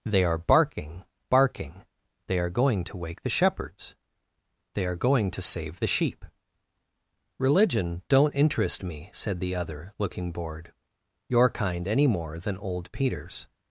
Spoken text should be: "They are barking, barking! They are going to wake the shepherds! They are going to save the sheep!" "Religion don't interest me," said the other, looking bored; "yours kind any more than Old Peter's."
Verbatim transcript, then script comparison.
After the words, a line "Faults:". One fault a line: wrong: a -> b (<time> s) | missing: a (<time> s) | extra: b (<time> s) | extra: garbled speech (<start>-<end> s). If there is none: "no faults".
"They are barking, barking! They are going to wake the shepherds! They are going to save the sheep!" "Religion don't interest me," said the other, looking bored; "your kind any more than Old Peter's."
Faults:
wrong: yours -> your (11.3 s)